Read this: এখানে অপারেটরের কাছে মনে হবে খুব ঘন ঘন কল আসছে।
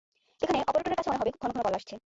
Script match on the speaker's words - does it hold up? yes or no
yes